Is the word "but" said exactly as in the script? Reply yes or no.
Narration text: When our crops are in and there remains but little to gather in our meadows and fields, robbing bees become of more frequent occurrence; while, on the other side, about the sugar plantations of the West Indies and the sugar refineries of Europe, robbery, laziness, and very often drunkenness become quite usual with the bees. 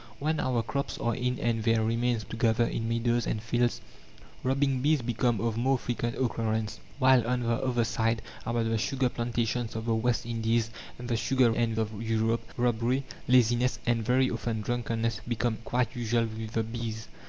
no